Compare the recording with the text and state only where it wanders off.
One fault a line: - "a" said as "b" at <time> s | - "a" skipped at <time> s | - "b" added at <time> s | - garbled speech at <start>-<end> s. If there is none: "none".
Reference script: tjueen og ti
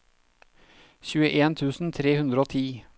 - "tusen tre hundre" added at 1.6 s